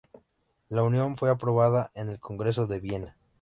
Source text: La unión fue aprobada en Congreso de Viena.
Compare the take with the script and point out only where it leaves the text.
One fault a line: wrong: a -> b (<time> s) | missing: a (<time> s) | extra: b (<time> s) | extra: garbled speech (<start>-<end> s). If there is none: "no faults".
extra: el (2.1 s)